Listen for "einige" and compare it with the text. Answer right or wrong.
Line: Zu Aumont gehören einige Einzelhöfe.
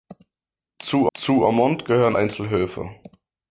wrong